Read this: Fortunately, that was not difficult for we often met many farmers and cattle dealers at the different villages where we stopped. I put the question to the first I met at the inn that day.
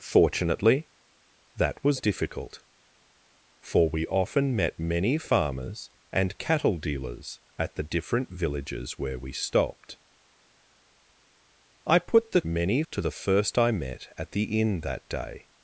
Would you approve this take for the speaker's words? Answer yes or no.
no